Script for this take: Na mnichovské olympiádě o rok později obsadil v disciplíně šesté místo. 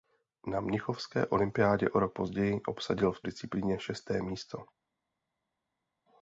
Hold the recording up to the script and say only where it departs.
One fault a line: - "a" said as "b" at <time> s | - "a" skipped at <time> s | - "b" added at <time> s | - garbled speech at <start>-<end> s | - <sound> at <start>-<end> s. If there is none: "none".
none